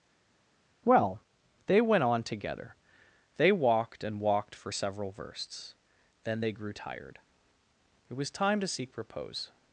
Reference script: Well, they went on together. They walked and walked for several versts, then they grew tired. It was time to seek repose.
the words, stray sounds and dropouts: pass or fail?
pass